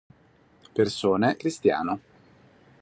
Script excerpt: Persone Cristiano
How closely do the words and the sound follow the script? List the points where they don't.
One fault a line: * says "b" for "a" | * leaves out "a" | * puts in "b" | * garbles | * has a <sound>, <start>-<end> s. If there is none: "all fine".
all fine